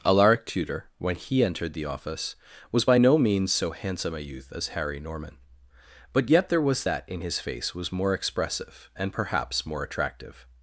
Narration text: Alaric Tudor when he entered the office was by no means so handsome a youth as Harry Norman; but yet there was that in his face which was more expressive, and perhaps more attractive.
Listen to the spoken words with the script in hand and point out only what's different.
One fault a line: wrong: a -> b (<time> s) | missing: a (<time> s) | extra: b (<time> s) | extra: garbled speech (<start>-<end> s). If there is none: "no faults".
missing: which (7.7 s)